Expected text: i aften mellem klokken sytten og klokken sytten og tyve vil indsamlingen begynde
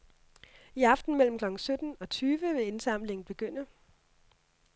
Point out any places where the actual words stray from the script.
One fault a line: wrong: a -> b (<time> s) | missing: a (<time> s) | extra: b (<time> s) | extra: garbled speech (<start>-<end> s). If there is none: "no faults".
missing: klokken sytten og (2.1 s)